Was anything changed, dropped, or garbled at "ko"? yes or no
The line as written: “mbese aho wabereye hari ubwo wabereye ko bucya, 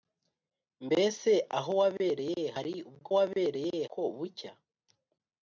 no